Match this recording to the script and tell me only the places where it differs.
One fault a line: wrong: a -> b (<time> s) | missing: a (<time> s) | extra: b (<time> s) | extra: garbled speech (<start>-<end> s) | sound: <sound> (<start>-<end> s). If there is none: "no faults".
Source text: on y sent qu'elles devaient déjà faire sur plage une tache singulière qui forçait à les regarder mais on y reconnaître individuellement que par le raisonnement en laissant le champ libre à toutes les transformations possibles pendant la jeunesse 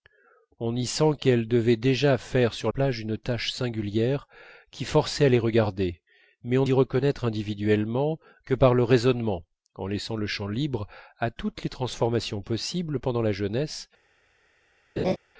sound: laugh (15.0-15.2 s)